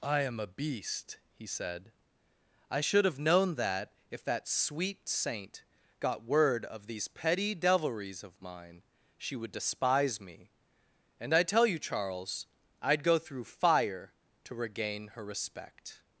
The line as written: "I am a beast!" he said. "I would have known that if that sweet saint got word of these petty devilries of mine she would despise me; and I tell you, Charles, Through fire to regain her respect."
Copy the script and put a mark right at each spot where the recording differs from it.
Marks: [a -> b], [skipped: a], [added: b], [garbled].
"I am a beast!" he said. "I [would -> should] have known that if that sweet saint got word of these petty devilries of mine she would despise me; and I tell you, Charles, [added: I'd go] Through fire to regain her respect."